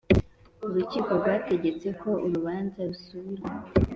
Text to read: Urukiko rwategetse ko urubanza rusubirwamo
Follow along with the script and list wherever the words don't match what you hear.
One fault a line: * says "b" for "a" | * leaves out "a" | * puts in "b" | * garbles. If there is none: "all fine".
all fine